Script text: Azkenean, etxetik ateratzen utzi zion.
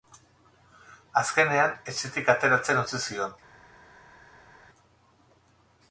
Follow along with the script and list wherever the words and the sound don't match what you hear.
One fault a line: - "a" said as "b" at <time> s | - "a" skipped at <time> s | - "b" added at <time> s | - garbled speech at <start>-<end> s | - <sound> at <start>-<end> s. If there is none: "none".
none